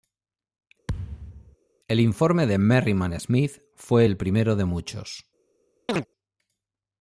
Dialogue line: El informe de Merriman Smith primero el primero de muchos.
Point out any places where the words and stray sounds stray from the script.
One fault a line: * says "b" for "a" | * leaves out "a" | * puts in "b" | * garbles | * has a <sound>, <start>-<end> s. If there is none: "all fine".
* has a thud, 0.9-1.6 s
* says "fue" for "primero"
* has a chirp, 5.9-6.1 s